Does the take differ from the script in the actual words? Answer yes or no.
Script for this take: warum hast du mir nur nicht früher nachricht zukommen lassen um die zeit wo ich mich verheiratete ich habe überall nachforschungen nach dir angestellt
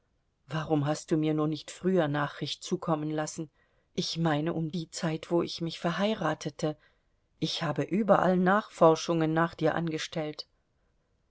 yes